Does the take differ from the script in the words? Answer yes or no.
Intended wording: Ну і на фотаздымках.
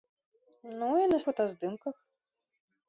no